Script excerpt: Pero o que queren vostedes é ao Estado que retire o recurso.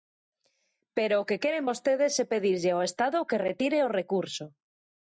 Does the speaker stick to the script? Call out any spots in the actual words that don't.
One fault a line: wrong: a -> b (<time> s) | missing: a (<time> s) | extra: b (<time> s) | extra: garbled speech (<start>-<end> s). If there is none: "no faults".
extra: pedirlle (2.3 s)